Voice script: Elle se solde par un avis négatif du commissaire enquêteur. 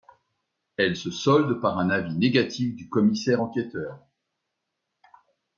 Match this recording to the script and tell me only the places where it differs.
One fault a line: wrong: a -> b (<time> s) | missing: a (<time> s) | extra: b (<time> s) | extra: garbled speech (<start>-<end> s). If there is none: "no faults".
no faults